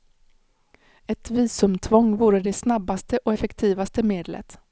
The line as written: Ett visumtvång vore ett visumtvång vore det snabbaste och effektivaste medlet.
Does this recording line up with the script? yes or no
no